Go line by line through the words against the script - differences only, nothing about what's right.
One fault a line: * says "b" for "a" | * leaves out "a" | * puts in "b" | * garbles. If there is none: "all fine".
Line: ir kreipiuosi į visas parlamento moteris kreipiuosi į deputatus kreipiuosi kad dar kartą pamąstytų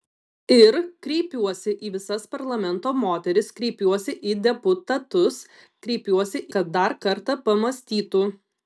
all fine